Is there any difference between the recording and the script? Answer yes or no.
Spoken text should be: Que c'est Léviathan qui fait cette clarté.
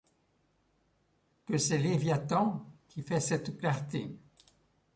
no